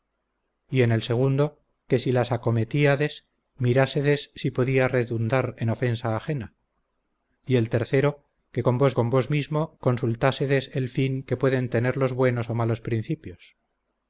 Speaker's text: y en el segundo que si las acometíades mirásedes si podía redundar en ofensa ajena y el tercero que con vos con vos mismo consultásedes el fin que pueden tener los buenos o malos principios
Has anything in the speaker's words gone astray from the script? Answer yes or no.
no